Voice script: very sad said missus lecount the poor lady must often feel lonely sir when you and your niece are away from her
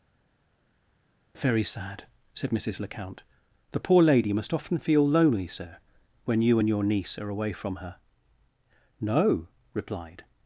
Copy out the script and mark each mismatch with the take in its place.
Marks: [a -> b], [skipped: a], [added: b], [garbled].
very sad said missus lecount the poor lady must often feel lonely sir when you and your niece are away from her [added: no replied]